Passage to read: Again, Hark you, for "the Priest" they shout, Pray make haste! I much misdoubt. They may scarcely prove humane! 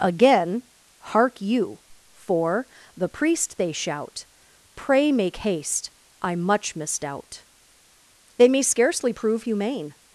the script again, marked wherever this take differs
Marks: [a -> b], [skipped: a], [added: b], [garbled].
Again, Hark you, for "the Priest" they shout, Pray make haste! I much misdoubt. They may scarcely prove humane!